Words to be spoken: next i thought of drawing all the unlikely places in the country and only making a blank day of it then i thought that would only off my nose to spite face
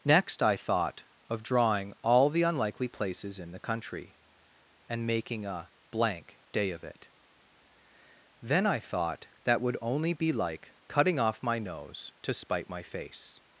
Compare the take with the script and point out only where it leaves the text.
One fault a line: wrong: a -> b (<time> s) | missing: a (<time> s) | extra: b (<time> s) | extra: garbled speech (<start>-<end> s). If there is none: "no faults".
missing: only (5.0 s)
extra: be like cutting (10.1 s)
extra: my (12.7 s)